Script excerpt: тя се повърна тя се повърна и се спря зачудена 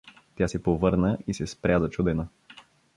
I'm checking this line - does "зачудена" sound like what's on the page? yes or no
yes